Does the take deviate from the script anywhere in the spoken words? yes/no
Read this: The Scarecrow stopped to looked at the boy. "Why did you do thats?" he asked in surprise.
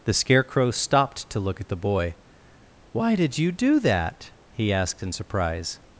yes